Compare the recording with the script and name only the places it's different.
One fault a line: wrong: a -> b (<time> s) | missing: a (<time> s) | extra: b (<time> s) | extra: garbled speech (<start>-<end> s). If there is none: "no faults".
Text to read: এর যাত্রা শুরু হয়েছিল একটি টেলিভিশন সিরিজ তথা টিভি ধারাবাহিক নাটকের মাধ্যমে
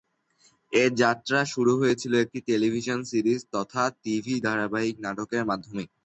no faults